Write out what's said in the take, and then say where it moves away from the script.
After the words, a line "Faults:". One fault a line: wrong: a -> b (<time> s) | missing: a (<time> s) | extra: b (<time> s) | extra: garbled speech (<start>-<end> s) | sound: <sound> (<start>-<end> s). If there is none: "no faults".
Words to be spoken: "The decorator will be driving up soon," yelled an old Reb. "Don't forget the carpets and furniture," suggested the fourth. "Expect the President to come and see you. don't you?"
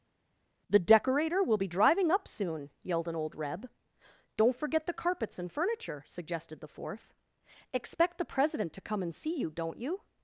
"The decorator will be driving up soon," yelled an old Reb. "Don't forget the carpets and furniture," suggested the fourth. "Expect the President to come and see you. don't you?"
Faults:
no faults